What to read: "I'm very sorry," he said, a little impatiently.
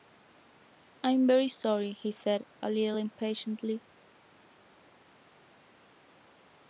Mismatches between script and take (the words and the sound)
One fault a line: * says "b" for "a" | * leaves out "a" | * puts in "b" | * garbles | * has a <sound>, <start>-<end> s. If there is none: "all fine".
all fine